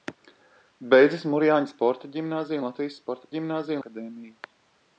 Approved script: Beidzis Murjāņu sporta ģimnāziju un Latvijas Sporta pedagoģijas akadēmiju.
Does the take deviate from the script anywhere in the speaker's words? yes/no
yes